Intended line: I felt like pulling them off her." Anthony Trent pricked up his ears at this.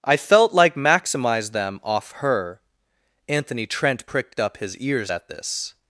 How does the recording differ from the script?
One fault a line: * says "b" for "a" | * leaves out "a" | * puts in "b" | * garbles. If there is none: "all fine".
* says "maximize" for "pulling"